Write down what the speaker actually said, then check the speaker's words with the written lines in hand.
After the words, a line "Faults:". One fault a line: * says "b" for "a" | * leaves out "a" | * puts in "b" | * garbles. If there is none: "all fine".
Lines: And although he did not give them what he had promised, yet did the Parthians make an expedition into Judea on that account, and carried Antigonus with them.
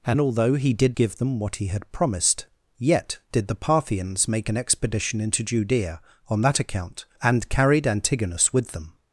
And although he did give them what he had promised, yet did the Parthians make an expedition into Judea on that account, and carried Antigonus with them.
Faults:
* leaves out "not"